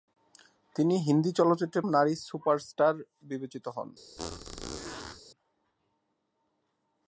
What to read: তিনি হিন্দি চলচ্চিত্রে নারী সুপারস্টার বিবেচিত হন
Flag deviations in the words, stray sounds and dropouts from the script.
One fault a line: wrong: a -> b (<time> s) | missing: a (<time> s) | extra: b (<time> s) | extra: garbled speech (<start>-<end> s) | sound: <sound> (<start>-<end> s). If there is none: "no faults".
sound: squeak (4.2-5.2 s)